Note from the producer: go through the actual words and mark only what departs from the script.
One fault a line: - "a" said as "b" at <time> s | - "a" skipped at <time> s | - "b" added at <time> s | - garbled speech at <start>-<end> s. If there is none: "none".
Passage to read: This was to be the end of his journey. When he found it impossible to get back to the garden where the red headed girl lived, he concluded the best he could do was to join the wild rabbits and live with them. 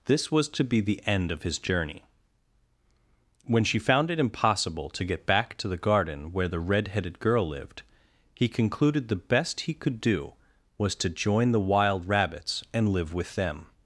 - "he" said as "she" at 3.6 s